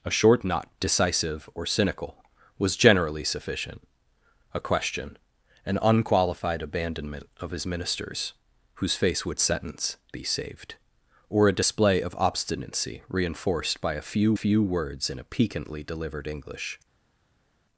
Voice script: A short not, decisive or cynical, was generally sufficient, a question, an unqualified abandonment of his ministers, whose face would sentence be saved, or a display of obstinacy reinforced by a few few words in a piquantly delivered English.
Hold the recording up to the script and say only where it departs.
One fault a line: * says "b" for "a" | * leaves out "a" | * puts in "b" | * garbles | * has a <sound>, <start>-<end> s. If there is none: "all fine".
all fine